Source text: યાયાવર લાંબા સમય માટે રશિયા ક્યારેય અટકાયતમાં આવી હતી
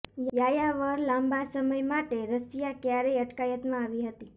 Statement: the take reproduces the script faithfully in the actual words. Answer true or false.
true